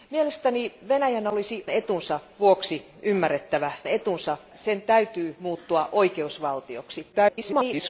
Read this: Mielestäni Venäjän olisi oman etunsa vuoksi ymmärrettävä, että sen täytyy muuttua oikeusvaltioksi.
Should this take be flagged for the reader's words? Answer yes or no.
yes